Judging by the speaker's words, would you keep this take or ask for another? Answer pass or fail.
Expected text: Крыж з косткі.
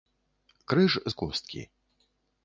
pass